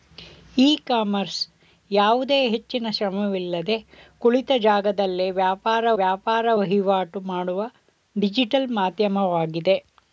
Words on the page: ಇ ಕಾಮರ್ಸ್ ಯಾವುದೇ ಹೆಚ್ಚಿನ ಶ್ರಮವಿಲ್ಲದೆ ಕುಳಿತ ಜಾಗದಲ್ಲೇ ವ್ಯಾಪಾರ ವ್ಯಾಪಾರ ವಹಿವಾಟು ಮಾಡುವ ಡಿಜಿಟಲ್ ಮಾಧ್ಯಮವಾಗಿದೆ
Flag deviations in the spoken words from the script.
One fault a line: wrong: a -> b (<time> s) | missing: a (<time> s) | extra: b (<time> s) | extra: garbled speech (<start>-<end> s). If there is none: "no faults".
no faults